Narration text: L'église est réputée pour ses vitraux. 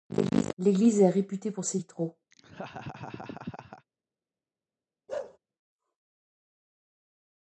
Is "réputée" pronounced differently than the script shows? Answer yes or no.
no